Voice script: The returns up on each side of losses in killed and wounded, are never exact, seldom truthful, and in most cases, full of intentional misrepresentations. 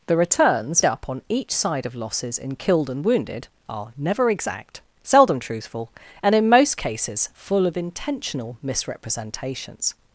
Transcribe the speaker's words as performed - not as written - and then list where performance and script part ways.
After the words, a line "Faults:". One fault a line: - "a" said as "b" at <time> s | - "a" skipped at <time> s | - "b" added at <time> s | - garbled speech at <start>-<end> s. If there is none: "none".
The returns up on each side of losses in killed and wounded, are never exact, seldom truthful, and in most cases, full of intentional misrepresentations.
Faults:
none